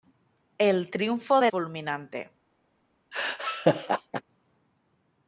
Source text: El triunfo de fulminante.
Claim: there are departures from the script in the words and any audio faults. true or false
true